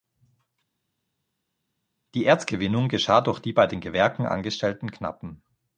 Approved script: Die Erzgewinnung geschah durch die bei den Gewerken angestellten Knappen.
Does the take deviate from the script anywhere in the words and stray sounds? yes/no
no